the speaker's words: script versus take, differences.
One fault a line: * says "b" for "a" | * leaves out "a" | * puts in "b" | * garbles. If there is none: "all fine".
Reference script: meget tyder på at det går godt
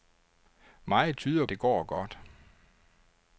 * leaves out "på at"